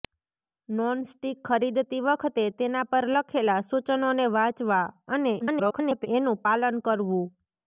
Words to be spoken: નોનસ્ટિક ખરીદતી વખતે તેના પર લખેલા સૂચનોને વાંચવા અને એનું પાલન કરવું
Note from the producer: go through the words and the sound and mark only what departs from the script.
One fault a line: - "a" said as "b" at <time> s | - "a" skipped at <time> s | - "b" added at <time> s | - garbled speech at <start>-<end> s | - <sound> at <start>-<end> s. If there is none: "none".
- garbled speech at 5.4-6.1 s